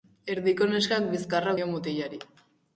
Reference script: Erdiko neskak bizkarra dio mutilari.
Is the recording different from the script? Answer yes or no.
no